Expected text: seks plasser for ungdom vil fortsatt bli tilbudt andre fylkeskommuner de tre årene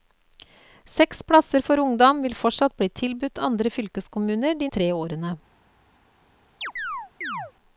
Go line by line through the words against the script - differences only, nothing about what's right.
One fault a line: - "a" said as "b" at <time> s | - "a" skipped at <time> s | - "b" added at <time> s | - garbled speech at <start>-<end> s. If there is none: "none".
none